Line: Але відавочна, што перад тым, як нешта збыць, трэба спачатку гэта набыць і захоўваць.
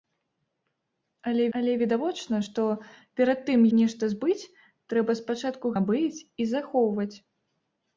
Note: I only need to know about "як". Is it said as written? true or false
false